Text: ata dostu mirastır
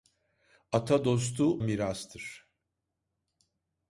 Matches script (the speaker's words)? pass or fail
pass